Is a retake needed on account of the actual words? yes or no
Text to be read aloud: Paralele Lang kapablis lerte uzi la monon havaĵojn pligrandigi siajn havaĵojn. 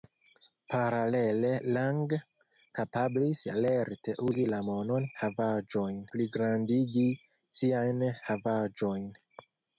no